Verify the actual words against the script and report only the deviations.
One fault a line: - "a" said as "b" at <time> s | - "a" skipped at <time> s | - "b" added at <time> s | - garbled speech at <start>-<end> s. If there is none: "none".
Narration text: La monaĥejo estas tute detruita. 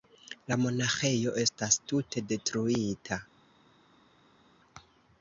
none